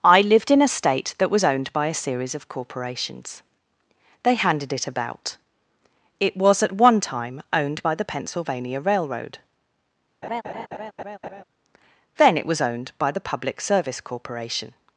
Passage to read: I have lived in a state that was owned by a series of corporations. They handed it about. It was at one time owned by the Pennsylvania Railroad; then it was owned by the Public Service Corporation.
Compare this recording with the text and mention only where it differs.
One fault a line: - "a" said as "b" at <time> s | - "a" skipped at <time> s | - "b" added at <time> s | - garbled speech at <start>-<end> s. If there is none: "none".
- "have" skipped at 0.2 s